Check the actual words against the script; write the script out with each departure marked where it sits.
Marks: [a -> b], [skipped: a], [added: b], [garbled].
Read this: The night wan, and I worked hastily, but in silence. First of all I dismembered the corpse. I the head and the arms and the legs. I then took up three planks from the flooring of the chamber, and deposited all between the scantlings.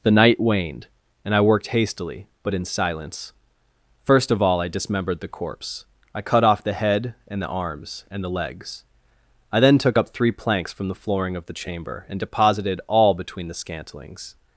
The night [wan, -> waned] and I worked hastily, but in silence. First of all I dismembered the corpse. I [added: cut off] the head and the arms and the legs. I then took up three planks from the flooring of the chamber, and deposited all between the scantlings.